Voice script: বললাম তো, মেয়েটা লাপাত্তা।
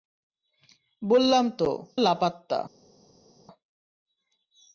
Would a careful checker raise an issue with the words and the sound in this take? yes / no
yes